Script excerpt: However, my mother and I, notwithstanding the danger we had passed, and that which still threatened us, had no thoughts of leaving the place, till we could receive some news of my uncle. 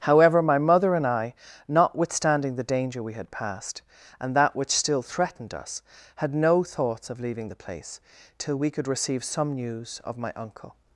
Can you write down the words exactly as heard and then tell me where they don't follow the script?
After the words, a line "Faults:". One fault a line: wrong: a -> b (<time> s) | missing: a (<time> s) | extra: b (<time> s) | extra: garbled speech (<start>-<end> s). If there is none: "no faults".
However, my mother and I, notwithstanding the danger we had passed, and that which still threatened us, had no thoughts of leaving the place, till we could receive some news of my uncle.
Faults:
no faults